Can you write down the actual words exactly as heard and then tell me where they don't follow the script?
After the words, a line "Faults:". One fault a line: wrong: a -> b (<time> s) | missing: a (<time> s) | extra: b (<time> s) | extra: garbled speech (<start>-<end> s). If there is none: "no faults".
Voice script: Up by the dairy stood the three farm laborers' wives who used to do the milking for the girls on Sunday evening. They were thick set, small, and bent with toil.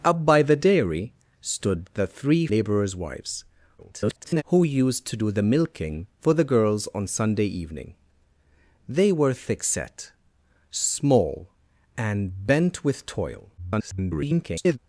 Up by the dairy stood the three laborers' wives [garbled] who used to do the milking for the girls on Sunday evening. They were thick set, small, and bent with toil. [garbled]
Faults:
missing: farm (2.5 s)
extra: garbled speech (3.8-4.4 s)
extra: garbled speech (13.6-14.8 s)